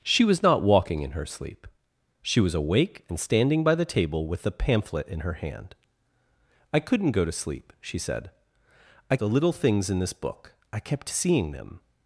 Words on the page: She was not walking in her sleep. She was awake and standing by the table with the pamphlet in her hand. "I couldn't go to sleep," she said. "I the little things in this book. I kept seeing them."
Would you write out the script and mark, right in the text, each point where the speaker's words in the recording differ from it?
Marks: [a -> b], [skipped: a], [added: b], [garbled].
She was not walking in her sleep. She was awake and standing by the table with the pamphlet in her hand. "I couldn't go to sleep," she said. "I the little things in this book. I kept seeing them."